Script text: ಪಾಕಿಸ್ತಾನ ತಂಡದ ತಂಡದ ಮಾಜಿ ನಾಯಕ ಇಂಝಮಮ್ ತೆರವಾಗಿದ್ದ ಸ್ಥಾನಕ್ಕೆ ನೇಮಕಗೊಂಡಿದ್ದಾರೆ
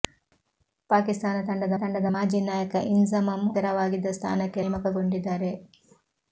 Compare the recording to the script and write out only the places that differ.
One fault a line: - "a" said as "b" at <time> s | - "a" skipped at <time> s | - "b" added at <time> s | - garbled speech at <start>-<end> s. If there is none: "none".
none